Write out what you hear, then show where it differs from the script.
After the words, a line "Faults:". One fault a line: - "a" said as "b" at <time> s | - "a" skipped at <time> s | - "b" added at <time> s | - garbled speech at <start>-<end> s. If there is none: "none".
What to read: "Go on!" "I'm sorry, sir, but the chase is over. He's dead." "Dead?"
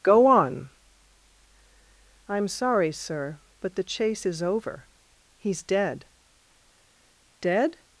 "Go on!" "I'm sorry, sir, but the chase is over. He's dead." "Dead?"
Faults:
none